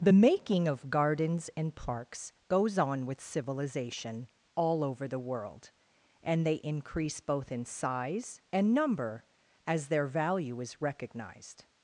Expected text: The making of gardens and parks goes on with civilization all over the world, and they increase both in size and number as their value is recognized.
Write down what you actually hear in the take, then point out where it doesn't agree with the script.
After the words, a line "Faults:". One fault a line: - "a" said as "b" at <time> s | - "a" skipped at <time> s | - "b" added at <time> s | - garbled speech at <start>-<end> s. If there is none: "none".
The making of gardens and parks goes on with civilization all over the world, and they increase both in size and number as their value is recognized.
Faults:
none